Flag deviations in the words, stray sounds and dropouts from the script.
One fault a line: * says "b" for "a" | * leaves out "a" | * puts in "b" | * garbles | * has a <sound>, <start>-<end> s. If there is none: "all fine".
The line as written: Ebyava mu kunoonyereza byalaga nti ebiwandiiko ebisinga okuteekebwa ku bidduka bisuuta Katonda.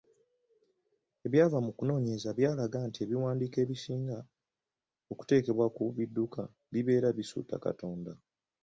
* puts in "bibeera"